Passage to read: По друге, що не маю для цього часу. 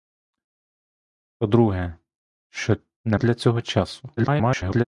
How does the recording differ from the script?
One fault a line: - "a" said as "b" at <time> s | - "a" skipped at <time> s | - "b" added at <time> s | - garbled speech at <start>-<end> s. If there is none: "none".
- "маю" skipped at 3.2 s
- garbled speech at 4.2-4.8 s